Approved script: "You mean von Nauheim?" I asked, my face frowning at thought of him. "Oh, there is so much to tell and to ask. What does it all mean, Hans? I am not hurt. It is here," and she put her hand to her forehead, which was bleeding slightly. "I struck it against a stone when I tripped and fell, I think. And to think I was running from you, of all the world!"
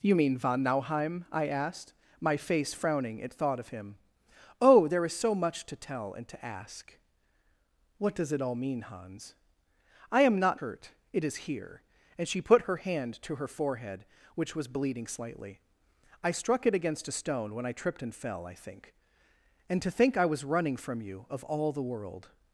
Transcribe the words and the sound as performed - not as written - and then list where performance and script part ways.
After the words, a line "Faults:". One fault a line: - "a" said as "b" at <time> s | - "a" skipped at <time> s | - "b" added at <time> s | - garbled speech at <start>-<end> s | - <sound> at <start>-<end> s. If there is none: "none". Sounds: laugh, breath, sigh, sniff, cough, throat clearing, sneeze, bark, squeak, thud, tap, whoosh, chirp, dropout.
"You mean von Nauheim?" I asked, my face frowning at thought of him. "Oh, there is so much to tell and to ask. What does it all mean, Hans? I am not hurt. It is here," and she put her hand to her forehead, which was bleeding slightly. "I struck it against a stone when I tripped and fell, I think. And to think I was running from you, of all the world!"
Faults:
none